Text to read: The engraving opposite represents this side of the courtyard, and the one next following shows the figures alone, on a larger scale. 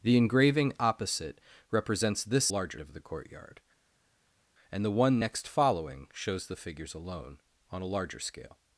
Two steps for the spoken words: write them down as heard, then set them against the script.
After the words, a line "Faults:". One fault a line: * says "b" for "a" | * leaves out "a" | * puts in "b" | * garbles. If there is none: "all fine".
The engraving opposite represents this larger of the courtyard, and the one next following shows the figures alone, on a larger scale.
Faults:
* says "larger" for "side"